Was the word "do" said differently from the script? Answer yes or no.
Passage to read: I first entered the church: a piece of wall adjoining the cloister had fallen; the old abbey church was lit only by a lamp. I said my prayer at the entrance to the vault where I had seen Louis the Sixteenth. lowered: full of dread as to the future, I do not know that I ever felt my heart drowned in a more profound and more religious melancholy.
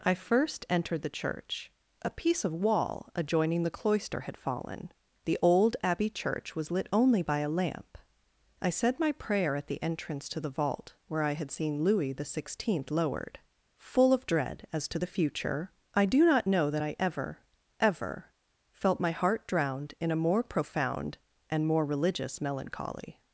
no